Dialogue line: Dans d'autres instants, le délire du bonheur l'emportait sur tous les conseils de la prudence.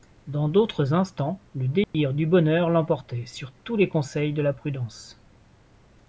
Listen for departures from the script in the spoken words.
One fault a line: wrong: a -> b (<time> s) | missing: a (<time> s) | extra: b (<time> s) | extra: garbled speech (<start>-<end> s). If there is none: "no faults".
no faults